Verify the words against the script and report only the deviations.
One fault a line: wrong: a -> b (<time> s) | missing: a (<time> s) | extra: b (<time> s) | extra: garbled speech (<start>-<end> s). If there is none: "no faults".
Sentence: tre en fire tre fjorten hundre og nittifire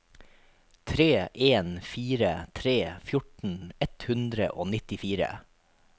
extra: ett (3.9 s)